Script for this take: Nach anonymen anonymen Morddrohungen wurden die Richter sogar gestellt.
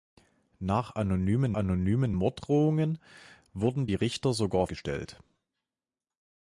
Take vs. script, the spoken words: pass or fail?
pass